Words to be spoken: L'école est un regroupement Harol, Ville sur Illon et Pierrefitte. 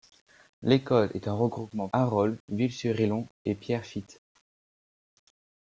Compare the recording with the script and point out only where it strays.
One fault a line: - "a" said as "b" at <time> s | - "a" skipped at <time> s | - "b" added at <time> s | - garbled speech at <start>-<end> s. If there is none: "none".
none